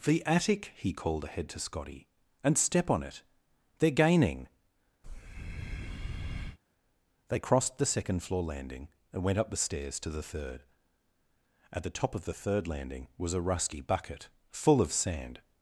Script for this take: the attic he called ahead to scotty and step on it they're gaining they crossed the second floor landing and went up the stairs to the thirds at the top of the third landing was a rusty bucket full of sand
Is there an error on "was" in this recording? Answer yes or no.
no